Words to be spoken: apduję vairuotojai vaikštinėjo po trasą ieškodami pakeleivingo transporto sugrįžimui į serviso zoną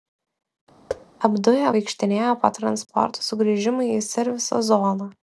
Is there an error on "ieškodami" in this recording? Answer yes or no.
yes